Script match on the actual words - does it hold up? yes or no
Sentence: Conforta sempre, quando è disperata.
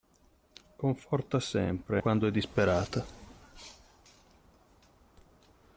yes